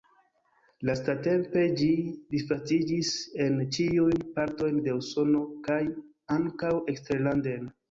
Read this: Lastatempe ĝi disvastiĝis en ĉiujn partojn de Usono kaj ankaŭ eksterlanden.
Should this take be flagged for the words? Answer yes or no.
no